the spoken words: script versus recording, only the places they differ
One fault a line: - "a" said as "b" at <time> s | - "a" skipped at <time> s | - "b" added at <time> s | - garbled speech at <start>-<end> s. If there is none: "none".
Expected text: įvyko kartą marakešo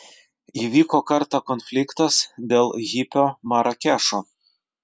- "konfliktas dėl hipio" added at 1.5 s